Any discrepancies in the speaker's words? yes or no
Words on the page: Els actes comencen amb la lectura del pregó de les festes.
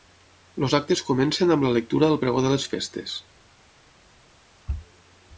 no